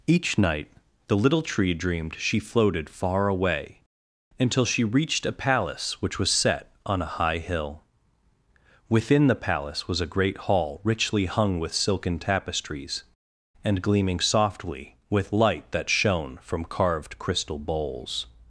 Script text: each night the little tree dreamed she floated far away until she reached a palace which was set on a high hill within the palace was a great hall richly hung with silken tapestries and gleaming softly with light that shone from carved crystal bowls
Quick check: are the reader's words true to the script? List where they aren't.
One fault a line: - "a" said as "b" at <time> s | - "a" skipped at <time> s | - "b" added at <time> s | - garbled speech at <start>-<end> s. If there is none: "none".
none